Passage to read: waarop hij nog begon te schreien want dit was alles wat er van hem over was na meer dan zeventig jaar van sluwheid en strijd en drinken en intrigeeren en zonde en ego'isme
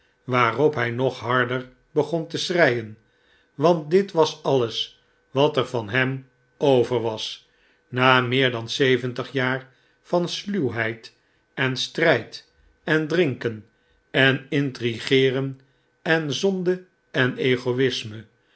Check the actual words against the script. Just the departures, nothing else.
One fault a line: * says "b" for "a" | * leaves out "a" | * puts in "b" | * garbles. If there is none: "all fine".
* puts in "harder"